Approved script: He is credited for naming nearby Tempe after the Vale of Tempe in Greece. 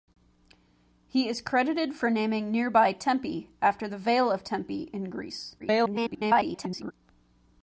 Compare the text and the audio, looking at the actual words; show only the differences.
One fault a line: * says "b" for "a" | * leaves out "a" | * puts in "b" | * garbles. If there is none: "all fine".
* garbles